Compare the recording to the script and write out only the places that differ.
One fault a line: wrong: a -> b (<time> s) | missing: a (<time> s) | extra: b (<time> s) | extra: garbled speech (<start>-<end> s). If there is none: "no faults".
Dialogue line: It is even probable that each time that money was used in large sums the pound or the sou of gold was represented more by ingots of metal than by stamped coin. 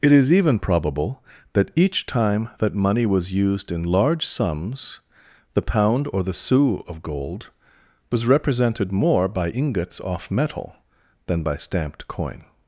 wrong: of -> off (10.0 s)